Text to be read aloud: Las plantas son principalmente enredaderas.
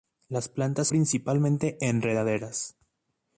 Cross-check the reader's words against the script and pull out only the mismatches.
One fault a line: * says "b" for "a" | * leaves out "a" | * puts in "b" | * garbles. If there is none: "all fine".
* leaves out "son"